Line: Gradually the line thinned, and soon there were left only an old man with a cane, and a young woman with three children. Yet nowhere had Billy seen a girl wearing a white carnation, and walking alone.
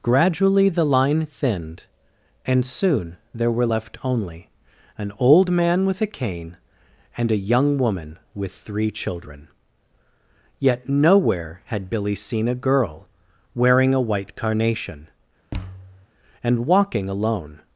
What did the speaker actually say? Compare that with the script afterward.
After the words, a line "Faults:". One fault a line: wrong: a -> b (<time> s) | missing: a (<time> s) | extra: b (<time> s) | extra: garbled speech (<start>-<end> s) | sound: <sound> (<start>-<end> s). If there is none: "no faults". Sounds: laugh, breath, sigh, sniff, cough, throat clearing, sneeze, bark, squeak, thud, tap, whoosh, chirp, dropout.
Gradually the line thinned, and soon there were left only an old man with a cane, and a young woman with three children. Yet nowhere had Billy seen a girl wearing a white carnation, and walking alone.
Faults:
sound: thud (15.5-16.1 s)